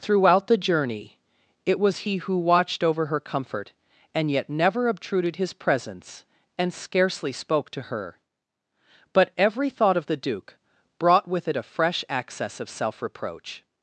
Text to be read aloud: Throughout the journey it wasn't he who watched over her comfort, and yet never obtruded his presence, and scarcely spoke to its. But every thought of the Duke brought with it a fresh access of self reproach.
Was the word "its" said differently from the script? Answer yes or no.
yes